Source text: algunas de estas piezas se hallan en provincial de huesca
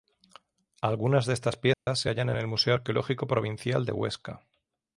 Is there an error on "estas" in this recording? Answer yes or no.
no